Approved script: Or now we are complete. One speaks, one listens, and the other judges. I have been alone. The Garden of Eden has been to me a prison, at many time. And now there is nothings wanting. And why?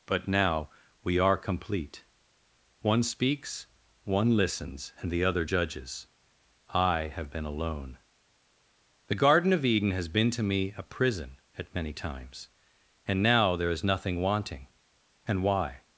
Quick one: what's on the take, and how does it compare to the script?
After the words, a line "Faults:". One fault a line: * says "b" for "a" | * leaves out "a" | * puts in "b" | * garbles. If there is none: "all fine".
But now we are complete. One speaks, one listens, and the other judges. I have been alone. The Garden of Eden has been to me a prison, at many times. And now there is nothing wanting. And why?
Faults:
* says "But" for "Or"
* says "times" for "time"
* says "nothing" for "nothings"